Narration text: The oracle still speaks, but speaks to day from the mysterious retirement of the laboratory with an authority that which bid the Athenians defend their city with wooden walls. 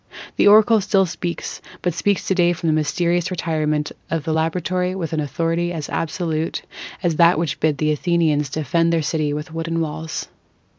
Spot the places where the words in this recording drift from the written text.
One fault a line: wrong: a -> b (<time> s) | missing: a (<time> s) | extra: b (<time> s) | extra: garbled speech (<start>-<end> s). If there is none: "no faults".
extra: as absolute as (5.7 s)